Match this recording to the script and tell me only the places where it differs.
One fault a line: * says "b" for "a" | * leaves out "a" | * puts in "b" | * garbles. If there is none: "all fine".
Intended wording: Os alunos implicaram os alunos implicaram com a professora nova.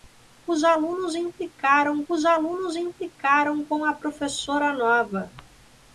all fine